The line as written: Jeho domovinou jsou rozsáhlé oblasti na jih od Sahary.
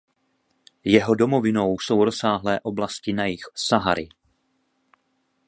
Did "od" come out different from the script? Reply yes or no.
yes